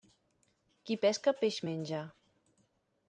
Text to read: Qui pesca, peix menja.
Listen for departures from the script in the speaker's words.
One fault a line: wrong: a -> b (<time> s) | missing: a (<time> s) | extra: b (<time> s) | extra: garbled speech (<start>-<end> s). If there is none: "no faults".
no faults